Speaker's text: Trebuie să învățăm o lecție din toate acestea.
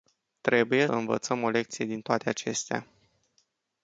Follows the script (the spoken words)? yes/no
no